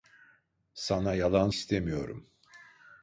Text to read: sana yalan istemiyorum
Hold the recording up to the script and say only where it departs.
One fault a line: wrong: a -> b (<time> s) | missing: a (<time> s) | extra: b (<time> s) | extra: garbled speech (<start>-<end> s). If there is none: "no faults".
no faults